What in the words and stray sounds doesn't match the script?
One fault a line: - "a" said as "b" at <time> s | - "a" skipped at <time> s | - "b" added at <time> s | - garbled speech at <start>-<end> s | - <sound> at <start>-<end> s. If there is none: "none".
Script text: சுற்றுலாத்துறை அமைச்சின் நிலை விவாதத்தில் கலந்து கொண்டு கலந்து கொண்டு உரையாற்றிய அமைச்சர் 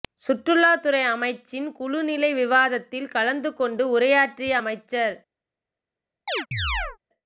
- "குழு" added at 1.7 s
- "கலந்து கொண்டு" skipped at 3.9 s
- chirp at 6.3-7.0 s